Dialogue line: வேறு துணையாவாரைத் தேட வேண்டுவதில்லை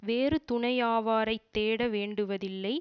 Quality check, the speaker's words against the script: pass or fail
pass